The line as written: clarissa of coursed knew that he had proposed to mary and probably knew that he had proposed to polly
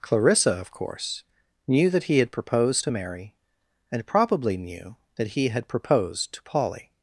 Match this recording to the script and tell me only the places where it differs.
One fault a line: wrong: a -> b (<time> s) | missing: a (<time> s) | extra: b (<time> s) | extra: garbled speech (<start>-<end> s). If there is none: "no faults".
wrong: coursed -> course (0.7 s)